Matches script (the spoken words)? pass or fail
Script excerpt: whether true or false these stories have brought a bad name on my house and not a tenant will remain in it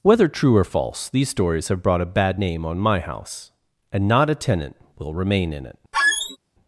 pass